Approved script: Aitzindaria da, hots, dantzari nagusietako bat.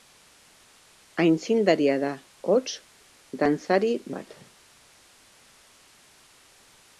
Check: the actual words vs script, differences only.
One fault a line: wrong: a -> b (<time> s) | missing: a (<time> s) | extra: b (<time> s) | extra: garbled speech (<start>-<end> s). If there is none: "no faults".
missing: nagusietako (3.9 s)